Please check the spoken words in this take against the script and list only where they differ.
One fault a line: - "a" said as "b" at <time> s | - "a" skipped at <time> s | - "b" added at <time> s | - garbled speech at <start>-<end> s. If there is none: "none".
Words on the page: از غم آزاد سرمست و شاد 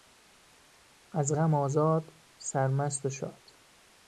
none